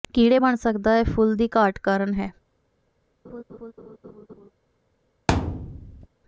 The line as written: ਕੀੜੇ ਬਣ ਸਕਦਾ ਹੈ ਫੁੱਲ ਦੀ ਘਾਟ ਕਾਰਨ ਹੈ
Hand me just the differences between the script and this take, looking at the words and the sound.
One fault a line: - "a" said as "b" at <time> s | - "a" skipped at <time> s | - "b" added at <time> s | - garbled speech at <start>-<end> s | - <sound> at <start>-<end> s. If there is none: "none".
- laugh at 3.2-4.5 s
- thud at 5.3-6.1 s